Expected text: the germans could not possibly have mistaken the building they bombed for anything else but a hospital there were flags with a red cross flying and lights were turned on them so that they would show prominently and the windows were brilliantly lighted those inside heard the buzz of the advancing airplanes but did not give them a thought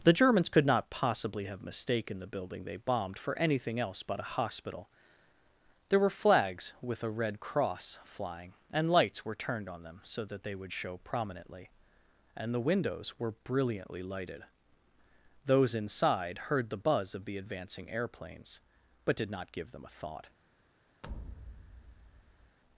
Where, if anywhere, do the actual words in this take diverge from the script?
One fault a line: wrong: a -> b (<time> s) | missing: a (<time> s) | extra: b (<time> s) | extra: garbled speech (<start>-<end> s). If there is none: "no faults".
no faults